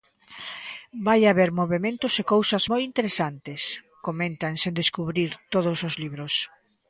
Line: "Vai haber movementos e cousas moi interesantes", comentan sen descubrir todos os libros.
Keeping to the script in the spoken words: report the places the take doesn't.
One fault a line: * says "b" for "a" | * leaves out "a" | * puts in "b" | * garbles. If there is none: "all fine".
all fine